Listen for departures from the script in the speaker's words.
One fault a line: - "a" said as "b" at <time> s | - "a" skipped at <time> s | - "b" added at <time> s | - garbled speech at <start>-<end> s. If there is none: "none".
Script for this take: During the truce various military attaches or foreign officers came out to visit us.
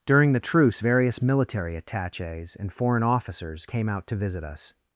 - "or" said as "and" at 2.6 s